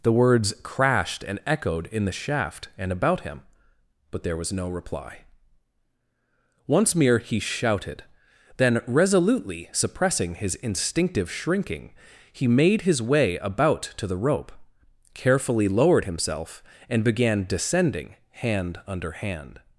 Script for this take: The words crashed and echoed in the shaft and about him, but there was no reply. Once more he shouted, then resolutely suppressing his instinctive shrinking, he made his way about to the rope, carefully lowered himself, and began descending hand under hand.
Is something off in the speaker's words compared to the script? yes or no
yes